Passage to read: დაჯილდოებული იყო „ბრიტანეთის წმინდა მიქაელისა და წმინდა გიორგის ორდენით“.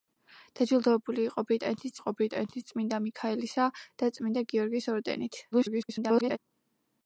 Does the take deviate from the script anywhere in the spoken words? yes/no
yes